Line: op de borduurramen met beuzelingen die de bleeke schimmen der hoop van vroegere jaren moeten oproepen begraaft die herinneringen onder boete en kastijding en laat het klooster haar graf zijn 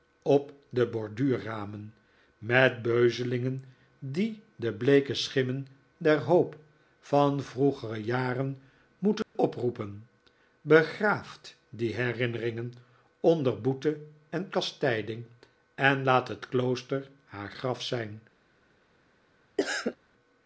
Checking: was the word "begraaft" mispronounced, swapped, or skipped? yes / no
no